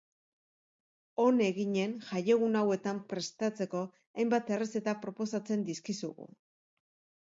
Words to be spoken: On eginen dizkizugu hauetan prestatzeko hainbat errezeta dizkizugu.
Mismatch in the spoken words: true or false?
true